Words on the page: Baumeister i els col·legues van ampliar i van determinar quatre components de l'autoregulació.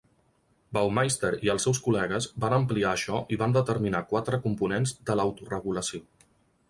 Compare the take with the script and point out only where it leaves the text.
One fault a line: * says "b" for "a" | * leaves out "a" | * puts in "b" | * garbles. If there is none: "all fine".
* puts in "seus"
* puts in "això"